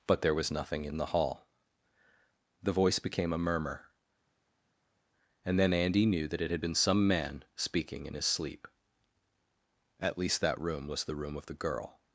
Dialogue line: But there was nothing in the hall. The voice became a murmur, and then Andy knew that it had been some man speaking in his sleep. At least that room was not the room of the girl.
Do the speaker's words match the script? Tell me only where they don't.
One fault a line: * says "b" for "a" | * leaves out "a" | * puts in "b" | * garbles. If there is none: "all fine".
* leaves out "not"